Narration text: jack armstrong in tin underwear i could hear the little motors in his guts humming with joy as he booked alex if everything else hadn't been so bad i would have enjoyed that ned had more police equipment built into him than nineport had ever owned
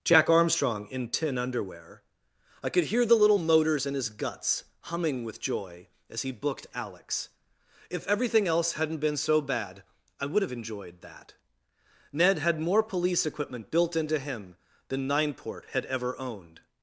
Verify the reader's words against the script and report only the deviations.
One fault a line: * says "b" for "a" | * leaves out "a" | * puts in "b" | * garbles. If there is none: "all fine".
all fine